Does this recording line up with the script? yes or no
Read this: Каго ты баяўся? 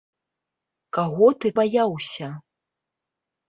yes